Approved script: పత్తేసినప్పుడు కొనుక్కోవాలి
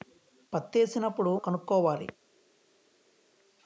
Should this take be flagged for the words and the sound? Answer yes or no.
no